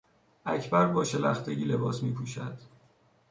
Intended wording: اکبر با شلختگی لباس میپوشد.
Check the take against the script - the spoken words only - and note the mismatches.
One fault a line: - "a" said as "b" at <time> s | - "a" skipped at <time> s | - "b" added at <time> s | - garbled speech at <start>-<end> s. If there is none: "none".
none